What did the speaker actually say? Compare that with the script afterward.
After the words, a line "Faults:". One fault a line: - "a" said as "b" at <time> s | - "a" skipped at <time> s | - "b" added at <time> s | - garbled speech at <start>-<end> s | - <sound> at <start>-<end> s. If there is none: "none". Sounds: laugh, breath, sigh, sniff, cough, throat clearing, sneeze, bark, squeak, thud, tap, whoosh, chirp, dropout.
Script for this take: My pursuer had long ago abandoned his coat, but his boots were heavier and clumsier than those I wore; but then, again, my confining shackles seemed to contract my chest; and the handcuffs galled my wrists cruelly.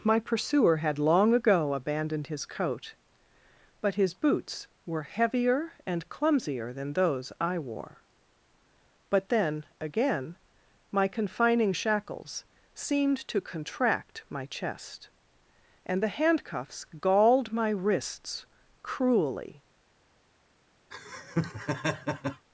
My pursuer had long ago abandoned his coat, but his boots were heavier and clumsier than those I wore; but then, again, my confining shackles seemed to contract my chest; and the handcuffs galled my wrists cruelly.
Faults:
- laugh at 20.9-22.5 s